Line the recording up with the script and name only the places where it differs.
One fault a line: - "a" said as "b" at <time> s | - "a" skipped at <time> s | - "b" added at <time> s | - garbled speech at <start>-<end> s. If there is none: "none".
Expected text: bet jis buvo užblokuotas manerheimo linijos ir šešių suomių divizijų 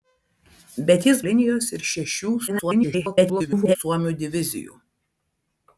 - "buvo užblokuotas manerheimo" skipped at 1.2 s
- garbled speech at 2.5-3.8 s